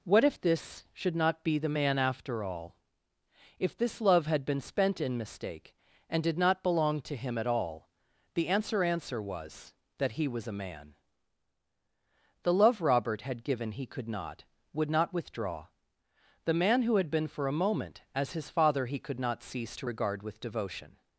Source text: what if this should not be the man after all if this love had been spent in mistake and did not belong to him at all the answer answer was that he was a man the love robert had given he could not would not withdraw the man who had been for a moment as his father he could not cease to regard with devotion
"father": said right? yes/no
yes